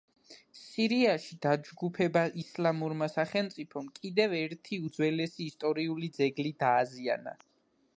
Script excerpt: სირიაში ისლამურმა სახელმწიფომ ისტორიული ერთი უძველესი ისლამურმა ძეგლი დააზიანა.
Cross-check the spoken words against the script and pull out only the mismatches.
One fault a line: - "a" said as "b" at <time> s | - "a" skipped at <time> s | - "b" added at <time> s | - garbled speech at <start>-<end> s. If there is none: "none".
- "დაჯგუფება" added at 1.4 s
- "ისტორიული" said as "კიდევ" at 4.0 s
- "ისლამურმა" said as "ისტორიული" at 5.5 s